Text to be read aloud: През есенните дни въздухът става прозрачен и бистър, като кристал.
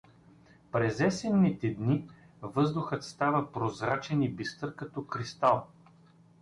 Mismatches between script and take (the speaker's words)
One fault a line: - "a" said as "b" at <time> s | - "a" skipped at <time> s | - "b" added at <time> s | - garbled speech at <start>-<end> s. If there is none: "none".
none